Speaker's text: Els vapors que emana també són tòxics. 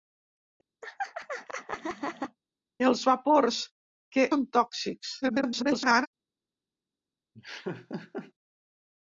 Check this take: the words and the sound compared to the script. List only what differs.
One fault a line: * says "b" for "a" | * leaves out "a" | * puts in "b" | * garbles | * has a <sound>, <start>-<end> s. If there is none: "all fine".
* has a laugh, 0.8-2.4 s
* leaves out "emana també"
* garbles
* has a laugh, 7.3-8.3 s